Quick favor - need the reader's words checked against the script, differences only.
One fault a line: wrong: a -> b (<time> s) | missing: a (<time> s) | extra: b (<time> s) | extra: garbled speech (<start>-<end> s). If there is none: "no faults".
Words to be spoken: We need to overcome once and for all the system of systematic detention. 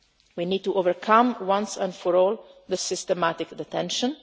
missing: system of (2.8 s)